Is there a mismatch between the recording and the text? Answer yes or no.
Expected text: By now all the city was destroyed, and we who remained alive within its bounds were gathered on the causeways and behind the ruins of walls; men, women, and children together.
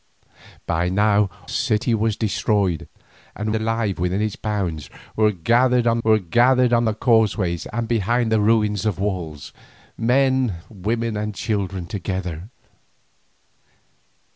yes